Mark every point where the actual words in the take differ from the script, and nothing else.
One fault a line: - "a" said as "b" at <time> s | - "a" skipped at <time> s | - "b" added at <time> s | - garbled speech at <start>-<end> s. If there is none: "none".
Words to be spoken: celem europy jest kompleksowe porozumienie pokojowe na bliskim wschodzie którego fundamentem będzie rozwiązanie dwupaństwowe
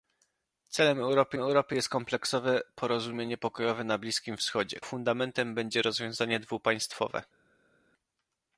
- "europy" added at 1.4 s
- "którego" skipped at 4.8 s